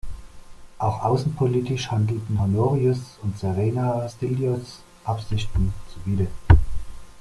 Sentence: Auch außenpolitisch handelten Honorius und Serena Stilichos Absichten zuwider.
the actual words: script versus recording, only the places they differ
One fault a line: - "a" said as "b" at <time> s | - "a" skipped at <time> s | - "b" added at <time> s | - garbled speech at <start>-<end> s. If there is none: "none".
none